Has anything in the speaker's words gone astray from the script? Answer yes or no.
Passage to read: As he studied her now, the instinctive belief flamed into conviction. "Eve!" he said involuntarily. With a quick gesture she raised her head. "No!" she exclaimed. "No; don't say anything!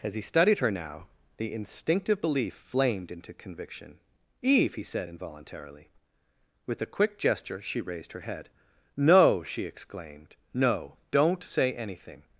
no